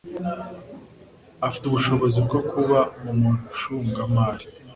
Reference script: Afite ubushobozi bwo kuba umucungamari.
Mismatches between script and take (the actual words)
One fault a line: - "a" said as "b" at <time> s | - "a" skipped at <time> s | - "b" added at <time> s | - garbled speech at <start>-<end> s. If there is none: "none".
none